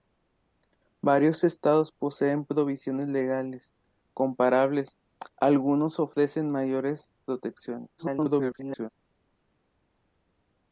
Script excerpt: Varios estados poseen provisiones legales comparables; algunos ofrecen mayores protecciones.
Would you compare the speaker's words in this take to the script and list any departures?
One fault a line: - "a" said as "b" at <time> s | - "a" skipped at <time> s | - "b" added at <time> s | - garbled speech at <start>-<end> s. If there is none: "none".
- garbled speech at 8.0-8.9 s